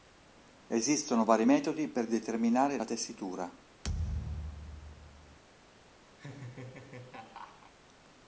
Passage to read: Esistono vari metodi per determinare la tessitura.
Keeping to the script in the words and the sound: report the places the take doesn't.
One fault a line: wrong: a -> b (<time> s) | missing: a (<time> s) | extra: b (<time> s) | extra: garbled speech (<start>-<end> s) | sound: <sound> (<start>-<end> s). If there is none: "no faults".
sound: thud (3.8-5.4 s)
sound: laugh (6.2-7.7 s)